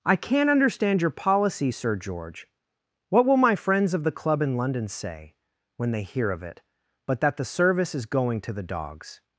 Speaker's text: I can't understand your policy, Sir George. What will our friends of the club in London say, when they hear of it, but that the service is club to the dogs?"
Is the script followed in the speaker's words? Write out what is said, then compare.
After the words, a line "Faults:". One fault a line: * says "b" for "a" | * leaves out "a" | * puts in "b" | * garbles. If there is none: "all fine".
I can't understand your policy, Sir George. What will my friends of the club in London say, when they hear of it, but that the service is going to the dogs?"
Faults:
* says "my" for "our"
* says "going" for "club"